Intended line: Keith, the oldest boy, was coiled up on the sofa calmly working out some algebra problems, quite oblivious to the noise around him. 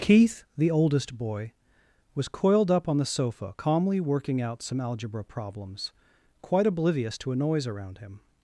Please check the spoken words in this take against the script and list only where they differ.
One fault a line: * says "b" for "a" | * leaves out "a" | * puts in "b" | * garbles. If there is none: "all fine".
* says "a" for "the"